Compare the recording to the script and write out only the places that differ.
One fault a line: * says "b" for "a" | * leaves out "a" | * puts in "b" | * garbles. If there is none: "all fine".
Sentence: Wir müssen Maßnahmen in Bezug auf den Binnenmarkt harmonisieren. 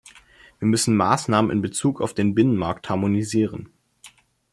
all fine